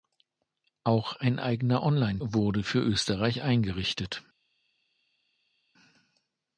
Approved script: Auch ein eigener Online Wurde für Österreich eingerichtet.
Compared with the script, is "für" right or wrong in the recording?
right